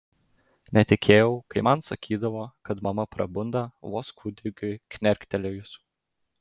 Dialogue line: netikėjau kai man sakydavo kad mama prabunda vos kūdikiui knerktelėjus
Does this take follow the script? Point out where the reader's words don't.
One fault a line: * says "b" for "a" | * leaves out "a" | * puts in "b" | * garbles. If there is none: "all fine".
all fine